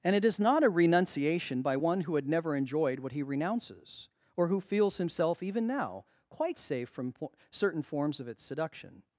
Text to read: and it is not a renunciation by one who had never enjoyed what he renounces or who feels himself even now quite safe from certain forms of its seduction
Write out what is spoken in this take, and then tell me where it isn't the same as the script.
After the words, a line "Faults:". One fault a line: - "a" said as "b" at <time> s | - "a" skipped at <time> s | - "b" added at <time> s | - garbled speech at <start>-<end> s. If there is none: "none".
and it is not a renunciation by one who had never enjoyed what he renounces or who feels himself even now quite safe from po certain forms of its seduction
Faults:
- "po" added at 7.1 s